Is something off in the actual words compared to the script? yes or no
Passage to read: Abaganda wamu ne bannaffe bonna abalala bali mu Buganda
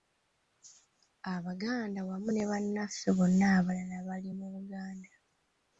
no